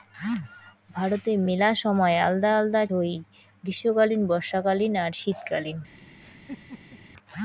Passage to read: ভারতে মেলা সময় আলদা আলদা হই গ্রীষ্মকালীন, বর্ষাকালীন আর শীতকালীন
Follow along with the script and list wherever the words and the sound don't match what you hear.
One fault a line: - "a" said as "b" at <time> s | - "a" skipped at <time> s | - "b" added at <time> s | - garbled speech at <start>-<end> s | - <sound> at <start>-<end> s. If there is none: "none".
- laugh at 6.2-7.0 s